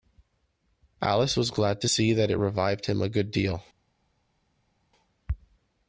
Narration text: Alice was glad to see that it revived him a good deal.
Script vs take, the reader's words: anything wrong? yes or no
no